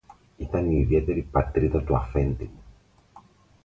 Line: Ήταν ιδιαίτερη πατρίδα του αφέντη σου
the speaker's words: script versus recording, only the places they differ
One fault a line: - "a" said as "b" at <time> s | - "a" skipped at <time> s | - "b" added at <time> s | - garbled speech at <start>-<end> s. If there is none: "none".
- "η" added at 0.7 s
- "σου" said as "μου" at 2.4 s